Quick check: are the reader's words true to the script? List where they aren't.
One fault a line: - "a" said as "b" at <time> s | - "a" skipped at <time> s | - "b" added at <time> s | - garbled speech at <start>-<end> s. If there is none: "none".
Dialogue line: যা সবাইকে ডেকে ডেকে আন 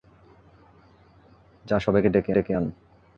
none